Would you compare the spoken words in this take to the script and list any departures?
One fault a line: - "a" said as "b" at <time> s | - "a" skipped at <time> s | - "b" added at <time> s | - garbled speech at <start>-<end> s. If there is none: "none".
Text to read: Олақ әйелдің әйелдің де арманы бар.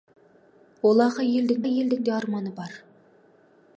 none